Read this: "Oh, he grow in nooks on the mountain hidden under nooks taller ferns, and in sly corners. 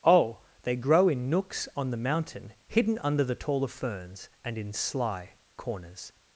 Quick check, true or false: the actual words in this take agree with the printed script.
false